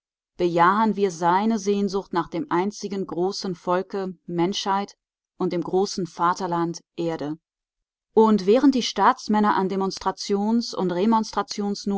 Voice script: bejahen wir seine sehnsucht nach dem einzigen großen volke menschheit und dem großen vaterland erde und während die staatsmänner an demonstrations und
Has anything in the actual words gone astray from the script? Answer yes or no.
no